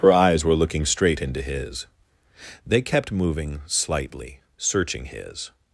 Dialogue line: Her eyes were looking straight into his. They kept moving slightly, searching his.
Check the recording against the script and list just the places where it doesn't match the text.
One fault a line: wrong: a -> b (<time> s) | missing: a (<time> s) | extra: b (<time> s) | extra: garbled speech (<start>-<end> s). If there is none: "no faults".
no faults